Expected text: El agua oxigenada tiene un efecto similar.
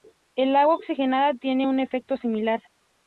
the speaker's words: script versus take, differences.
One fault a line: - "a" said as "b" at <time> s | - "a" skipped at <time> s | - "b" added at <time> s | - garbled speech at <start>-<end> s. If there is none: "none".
none